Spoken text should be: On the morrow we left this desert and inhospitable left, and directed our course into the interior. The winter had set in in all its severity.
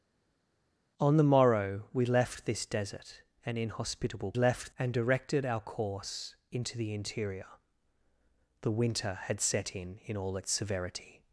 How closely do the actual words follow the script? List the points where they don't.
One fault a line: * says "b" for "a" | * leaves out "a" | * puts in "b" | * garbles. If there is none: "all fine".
all fine